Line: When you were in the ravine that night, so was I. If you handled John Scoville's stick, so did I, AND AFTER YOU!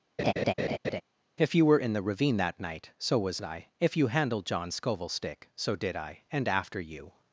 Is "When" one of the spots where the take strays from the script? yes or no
yes